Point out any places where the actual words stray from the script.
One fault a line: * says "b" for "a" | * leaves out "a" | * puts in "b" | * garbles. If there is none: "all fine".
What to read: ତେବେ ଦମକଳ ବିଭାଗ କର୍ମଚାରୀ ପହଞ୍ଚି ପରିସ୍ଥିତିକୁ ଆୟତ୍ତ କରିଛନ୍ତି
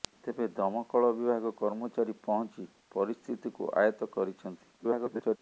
* garbles